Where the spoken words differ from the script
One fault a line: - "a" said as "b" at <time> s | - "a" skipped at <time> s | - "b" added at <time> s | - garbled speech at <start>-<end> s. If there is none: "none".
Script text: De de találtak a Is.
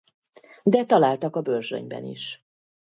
- "de" skipped at 0.8 s
- "Börzsönyben" added at 1.4 s